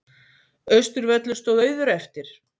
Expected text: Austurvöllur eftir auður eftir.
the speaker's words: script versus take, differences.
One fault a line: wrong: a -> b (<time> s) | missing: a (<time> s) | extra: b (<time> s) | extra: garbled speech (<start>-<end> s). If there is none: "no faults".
wrong: eftir -> stóð (1.4 s)